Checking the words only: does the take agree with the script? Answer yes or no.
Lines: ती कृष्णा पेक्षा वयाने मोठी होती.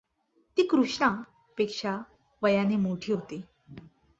yes